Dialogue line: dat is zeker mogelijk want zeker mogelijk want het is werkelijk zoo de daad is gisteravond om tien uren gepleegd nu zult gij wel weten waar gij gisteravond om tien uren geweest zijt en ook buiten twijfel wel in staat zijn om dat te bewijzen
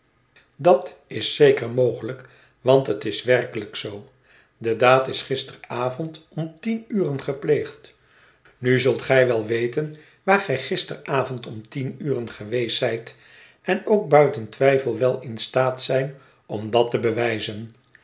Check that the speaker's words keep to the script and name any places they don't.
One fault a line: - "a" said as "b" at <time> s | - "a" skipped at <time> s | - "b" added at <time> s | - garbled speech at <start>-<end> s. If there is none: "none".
- "zeker mogelijk want" skipped at 2.9 s